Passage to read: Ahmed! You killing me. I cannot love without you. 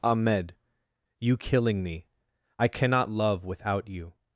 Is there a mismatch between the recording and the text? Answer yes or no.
no